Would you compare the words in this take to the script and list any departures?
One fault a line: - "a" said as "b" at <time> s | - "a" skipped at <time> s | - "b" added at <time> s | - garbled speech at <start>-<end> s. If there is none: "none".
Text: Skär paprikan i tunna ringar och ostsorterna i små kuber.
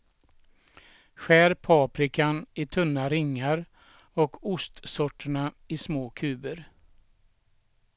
none